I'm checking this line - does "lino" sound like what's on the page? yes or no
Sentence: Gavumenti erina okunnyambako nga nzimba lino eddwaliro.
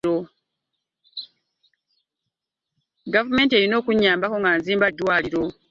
no